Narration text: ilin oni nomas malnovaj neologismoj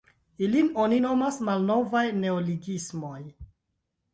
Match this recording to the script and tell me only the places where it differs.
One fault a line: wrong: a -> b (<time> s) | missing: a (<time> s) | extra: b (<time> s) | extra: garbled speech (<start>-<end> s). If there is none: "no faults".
no faults